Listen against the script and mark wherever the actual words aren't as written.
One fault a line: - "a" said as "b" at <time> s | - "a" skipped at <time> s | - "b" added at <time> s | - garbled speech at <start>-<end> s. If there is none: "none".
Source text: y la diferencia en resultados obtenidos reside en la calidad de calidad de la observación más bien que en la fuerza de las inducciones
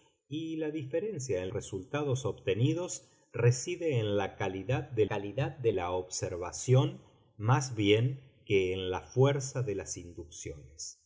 none